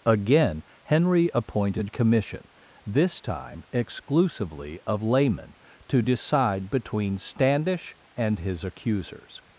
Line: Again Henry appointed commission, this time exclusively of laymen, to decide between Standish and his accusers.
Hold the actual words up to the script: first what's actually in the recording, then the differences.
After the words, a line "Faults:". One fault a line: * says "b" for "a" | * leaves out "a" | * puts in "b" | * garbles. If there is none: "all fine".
Again Henry appointed commission, this time exclusively of laymen, to decide between Standish and his accusers.
Faults:
all fine